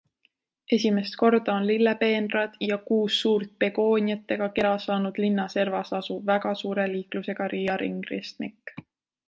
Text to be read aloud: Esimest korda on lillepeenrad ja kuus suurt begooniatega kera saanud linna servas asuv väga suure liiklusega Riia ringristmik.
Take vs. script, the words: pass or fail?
pass